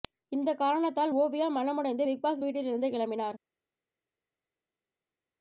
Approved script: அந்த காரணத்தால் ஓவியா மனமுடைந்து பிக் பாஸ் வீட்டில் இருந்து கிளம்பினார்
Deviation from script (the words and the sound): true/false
true